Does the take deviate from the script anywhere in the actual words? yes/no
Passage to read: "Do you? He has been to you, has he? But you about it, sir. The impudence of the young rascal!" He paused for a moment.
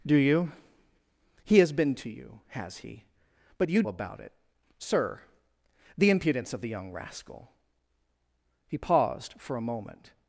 no